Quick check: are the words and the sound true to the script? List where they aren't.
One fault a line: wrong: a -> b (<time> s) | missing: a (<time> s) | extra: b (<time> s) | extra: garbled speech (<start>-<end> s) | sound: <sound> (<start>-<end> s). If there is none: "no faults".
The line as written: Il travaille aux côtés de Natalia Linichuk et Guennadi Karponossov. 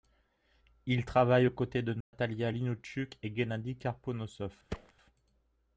sound: dropout (2.0-2.1 s)
sound: thud (4.7-4.9 s)